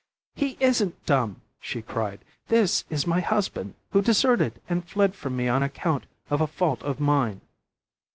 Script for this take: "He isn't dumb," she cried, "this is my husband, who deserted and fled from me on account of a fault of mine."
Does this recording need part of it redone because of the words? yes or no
no